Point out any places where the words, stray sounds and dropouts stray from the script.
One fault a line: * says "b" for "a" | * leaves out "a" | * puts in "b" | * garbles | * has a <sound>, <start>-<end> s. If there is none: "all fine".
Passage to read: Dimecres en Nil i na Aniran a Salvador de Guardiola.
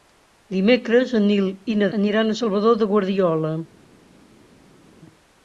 all fine